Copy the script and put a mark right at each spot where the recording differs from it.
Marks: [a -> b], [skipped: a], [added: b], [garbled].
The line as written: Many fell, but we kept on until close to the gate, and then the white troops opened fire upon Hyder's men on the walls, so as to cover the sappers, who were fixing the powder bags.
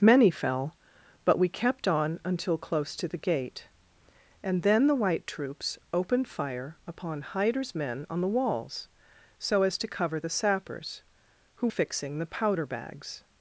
Many fell, but we kept on until close to the gate, and then the white troops opened fire upon Hyder's men on the walls, so as to cover the sappers, who [skipped: were] fixing the powder bags.